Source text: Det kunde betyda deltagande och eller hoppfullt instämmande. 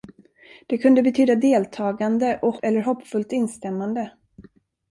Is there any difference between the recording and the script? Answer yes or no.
no